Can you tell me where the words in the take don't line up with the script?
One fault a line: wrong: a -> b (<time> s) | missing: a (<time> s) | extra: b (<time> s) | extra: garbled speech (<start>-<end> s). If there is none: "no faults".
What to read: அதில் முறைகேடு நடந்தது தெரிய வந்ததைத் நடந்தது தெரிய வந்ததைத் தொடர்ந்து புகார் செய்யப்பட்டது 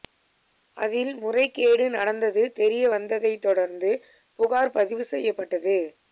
missing: நடந்தது தெரிய வந்ததைத் (3.4 s)
extra: பதிவு (4.8 s)